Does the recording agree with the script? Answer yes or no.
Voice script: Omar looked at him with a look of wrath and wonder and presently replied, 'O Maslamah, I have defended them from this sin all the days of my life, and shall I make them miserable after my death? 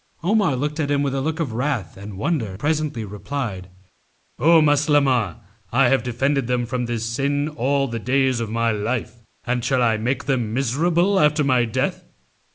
no